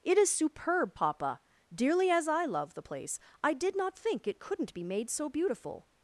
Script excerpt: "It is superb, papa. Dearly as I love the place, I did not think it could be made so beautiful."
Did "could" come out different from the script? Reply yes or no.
yes